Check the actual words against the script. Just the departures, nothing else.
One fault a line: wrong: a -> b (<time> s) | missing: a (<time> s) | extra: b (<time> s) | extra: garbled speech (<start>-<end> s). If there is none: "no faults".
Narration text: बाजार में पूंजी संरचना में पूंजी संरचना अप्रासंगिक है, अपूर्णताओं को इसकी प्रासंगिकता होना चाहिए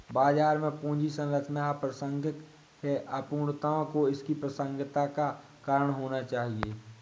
missing: में पूंजी संरचना (1.7 s)
extra: का कारण (5.1 s)